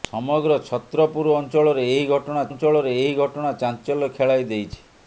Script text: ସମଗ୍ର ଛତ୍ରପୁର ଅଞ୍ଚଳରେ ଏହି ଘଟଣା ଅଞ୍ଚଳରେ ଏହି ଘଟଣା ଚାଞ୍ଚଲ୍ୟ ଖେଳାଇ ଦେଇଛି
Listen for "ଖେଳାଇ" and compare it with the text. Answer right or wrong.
right